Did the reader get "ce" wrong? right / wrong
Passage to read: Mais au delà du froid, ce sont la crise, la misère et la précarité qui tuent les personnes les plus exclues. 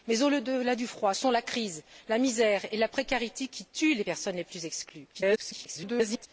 wrong